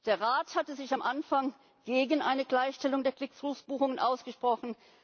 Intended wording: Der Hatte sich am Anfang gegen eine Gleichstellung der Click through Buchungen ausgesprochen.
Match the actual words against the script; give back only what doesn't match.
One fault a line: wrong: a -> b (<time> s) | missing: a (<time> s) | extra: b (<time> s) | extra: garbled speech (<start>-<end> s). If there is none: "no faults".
extra: Rat (0.2 s)